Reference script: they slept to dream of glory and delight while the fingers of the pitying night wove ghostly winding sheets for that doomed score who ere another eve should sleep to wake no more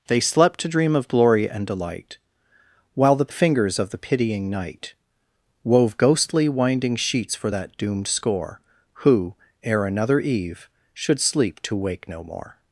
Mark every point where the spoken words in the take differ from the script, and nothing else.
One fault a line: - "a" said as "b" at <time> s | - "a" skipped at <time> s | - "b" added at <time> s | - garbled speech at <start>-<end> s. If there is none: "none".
none